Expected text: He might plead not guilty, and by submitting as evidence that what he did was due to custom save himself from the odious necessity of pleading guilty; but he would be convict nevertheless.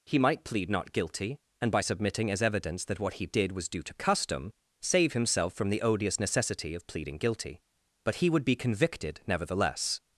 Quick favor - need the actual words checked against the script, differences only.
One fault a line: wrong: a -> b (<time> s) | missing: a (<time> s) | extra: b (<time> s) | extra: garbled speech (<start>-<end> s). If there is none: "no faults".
wrong: convict -> convicted (8.5 s)